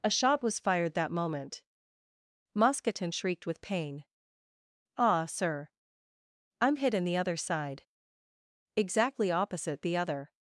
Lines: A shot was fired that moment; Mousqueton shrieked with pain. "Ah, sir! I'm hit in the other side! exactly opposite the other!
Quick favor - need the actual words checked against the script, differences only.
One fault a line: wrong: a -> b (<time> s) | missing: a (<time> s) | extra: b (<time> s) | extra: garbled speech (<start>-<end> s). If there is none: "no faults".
no faults